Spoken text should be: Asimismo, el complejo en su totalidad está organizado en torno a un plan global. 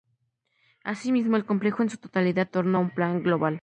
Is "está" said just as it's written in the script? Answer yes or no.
no